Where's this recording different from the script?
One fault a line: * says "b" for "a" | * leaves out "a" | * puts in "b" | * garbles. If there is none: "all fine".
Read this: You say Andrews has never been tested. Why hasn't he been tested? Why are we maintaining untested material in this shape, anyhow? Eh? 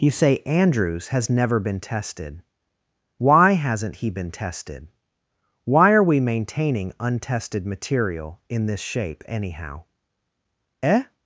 all fine